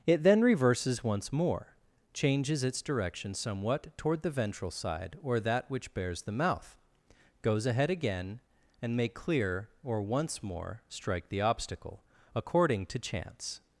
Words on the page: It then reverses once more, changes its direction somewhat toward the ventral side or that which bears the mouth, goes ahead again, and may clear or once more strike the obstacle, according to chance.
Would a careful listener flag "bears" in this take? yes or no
no